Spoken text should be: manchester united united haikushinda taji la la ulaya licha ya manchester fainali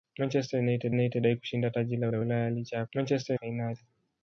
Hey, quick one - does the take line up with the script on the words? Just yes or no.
yes